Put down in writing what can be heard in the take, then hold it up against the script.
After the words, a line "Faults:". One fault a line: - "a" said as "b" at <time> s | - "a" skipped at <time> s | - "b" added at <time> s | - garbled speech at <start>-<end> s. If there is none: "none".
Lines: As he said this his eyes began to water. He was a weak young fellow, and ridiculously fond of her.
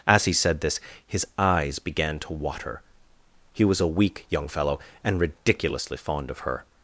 As he said this his eyes began to water. He was a weak young fellow, and ridiculously fond of her.
Faults:
none